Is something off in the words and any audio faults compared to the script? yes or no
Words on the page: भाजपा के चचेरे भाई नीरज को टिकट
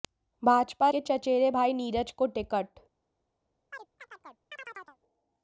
yes